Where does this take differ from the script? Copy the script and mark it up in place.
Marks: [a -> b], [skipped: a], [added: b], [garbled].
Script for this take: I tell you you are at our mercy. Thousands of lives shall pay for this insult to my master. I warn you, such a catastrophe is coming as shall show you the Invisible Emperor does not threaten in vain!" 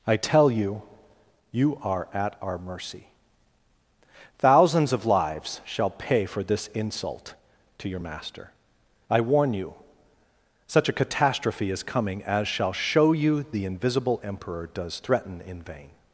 I tell you you are at our mercy. Thousands of lives shall pay for this insult to [my -> your] master. I warn you, such a catastrophe is coming as shall show you the Invisible Emperor does [skipped: not] threaten in vain!"